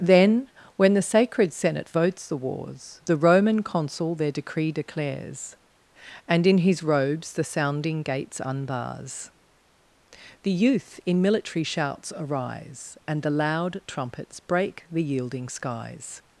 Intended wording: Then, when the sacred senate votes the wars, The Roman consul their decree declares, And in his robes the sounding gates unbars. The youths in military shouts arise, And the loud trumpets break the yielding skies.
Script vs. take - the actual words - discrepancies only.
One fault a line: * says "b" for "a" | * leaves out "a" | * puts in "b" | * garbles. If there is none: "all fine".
* says "youth" for "youths"